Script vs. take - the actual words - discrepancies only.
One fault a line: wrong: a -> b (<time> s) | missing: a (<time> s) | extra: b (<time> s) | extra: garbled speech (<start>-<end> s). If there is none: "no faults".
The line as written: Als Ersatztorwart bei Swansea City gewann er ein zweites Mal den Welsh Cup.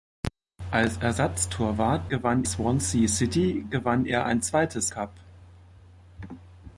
wrong: bei -> gewann (2.1 s)
missing: Mal den Welsh (4.9 s)